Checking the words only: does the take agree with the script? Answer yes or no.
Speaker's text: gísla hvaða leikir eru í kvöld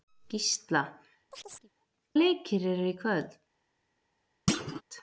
no